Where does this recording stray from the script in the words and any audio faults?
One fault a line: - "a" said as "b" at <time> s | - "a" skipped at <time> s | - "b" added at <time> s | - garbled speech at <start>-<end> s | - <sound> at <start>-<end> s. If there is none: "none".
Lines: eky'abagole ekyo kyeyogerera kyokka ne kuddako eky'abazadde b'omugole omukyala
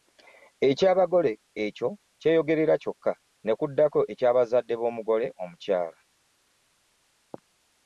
none